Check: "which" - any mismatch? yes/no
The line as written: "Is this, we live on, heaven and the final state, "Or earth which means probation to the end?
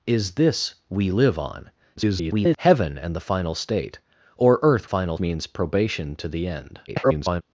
yes